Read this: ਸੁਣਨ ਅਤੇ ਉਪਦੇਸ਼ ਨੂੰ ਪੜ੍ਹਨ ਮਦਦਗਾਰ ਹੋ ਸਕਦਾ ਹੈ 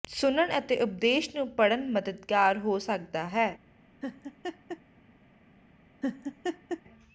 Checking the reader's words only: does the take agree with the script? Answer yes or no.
yes